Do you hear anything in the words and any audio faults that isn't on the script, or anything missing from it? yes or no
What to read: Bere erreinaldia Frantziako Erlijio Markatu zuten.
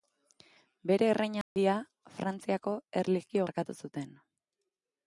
yes